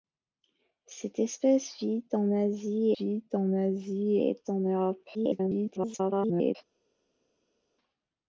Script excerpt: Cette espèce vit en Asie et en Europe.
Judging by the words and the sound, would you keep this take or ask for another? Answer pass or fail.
fail